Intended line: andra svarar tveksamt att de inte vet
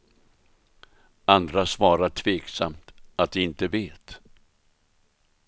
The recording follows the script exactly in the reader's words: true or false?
true